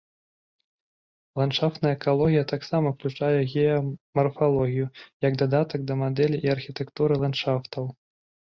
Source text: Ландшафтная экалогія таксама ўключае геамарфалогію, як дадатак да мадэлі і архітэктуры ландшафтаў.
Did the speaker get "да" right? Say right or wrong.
right